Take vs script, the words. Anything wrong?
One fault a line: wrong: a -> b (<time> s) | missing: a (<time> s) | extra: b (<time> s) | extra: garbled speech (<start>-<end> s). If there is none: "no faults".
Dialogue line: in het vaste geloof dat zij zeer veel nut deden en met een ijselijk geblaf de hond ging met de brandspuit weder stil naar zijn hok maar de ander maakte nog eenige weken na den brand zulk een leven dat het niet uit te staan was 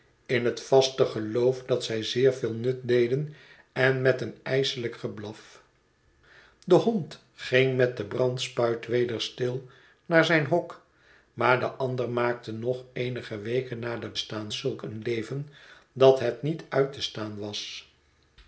wrong: brand -> staan (14.2 s)